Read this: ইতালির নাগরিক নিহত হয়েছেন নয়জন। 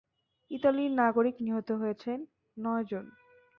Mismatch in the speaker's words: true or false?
false